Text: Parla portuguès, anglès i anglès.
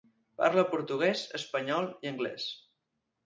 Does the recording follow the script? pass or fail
fail